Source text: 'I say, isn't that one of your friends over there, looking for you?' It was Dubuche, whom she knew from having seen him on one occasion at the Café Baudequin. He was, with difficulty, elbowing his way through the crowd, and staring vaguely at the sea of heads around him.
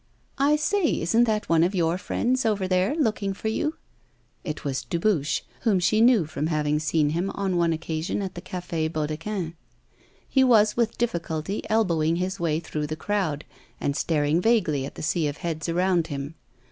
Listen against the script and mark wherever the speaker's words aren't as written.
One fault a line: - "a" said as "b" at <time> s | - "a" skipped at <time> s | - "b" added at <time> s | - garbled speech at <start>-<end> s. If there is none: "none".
none